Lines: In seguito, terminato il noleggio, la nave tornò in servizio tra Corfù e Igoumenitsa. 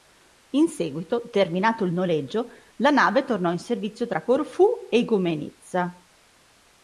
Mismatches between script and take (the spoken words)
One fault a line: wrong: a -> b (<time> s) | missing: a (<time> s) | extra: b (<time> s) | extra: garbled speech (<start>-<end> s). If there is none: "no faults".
no faults